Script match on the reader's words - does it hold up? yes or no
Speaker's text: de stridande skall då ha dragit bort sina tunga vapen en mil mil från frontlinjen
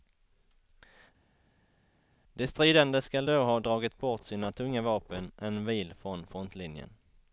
no